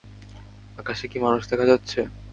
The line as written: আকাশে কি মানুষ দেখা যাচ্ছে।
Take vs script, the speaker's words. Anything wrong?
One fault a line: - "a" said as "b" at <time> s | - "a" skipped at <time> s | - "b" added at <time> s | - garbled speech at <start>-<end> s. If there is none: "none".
none